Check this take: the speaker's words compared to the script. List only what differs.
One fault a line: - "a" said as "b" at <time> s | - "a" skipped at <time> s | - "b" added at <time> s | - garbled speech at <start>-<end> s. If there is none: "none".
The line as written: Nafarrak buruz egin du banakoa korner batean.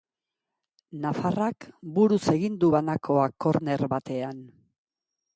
none